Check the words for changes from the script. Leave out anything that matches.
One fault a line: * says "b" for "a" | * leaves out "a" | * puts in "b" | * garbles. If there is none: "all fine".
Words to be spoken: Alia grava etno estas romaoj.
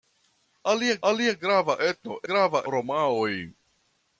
* puts in "alia"
* says "grava" for "estas"